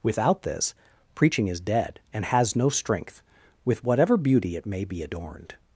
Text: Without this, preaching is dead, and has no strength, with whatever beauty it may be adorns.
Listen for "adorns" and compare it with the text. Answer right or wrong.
wrong